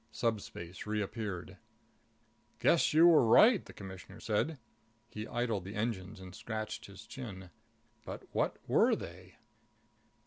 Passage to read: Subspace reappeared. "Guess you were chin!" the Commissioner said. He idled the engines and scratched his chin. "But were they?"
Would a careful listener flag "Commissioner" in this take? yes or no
no